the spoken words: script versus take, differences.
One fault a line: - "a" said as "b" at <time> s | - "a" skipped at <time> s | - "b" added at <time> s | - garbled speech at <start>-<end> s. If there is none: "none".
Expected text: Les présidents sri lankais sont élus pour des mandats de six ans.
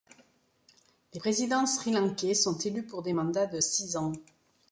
none